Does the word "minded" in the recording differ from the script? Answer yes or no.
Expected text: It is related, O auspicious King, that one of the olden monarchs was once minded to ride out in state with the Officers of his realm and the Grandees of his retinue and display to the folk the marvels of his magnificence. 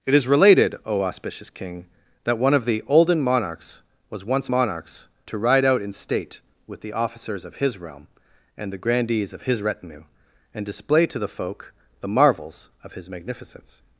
yes